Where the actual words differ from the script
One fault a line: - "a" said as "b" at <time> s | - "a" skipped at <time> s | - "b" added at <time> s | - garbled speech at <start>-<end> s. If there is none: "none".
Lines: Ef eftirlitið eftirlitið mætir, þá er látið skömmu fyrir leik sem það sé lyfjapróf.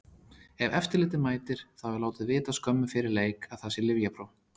- "eftirlitið" skipped at 1.2 s
- "vita" added at 2.3 s
- "sem" said as "að" at 3.5 s